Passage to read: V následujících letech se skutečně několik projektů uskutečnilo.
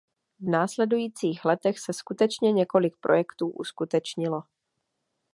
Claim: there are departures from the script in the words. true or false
false